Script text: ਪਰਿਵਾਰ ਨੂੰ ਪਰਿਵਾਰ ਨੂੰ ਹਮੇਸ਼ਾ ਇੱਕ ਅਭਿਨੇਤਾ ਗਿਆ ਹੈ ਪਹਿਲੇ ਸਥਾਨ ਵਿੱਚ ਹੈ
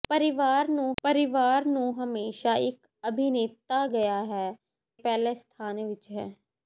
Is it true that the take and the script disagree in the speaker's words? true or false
false